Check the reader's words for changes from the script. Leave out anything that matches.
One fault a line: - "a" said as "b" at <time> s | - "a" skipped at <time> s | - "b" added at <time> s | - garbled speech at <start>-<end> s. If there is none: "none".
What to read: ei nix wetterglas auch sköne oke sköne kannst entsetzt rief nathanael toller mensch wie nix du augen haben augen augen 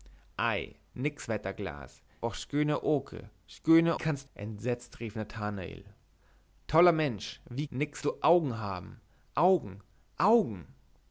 none